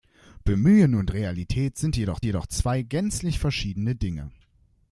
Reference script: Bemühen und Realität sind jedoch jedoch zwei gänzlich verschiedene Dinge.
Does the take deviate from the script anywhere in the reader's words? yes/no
no